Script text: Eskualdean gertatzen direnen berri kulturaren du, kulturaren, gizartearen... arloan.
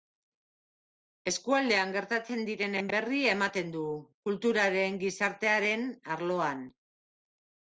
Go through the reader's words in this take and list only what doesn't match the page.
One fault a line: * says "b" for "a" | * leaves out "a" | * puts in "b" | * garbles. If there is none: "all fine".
* says "ematen" for "kulturaren"